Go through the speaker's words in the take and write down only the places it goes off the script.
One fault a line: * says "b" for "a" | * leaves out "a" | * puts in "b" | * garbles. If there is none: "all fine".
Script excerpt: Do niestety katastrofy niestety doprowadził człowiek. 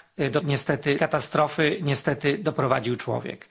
all fine